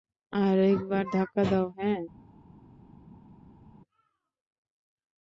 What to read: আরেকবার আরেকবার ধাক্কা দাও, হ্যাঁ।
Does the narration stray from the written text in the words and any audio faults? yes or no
yes